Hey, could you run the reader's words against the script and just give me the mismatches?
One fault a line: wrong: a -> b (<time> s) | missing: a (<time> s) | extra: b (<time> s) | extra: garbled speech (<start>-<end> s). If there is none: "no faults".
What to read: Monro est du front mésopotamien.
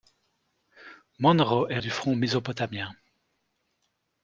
no faults